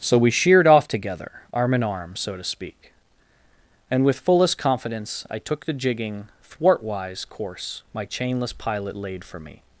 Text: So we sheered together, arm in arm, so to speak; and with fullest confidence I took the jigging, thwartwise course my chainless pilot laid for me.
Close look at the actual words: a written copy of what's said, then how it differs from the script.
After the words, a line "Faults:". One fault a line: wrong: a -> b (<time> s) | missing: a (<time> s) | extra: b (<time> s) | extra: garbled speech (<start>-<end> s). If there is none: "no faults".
So we sheered off together, arm in arm, so to speak; and with fullest confidence I took the jigging, thwartwise course my chainless pilot laid for me.
Faults:
extra: off (0.7 s)